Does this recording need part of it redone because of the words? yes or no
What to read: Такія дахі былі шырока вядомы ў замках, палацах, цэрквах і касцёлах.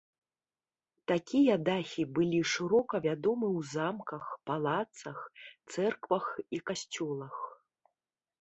no